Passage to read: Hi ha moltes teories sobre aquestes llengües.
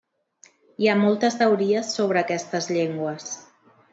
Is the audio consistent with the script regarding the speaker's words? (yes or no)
yes